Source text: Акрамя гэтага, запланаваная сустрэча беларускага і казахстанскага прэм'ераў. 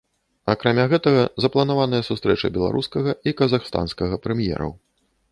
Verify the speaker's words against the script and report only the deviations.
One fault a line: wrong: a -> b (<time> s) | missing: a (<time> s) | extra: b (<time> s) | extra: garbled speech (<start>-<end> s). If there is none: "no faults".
no faults